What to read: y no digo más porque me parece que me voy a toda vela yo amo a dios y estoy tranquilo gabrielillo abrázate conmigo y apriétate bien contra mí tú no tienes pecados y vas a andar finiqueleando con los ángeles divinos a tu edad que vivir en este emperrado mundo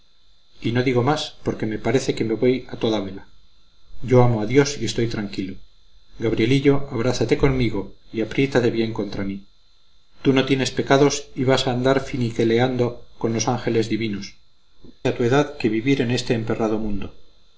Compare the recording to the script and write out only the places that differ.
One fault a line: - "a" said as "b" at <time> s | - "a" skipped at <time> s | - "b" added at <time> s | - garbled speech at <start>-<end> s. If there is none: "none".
none